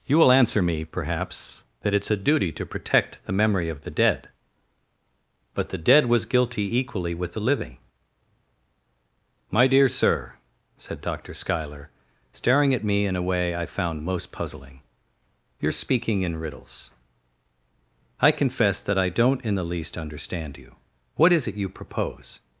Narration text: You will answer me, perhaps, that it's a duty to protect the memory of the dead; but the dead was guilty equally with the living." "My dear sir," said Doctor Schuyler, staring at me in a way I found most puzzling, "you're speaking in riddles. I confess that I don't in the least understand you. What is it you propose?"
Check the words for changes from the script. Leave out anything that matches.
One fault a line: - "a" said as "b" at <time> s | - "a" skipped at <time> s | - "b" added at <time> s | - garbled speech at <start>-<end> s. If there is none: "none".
none